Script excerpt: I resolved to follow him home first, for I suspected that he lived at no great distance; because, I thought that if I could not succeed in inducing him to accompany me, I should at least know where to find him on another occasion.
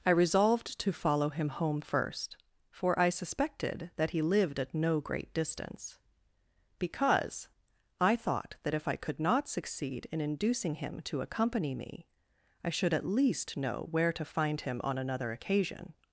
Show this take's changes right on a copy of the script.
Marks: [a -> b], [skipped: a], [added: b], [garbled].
I resolved to follow him home first, for I suspected that he lived at no great distance; because, I thought that if I could not succeed in inducing him to accompany me, I should at least know where to find him on another occasion.